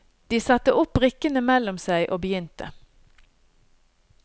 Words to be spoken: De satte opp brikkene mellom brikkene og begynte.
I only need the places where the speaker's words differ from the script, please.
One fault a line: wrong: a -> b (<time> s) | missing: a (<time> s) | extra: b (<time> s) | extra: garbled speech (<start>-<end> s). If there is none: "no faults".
wrong: brikkene -> seg (1.8 s)